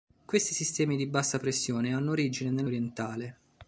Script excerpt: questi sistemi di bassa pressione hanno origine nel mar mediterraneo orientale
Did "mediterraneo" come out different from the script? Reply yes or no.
yes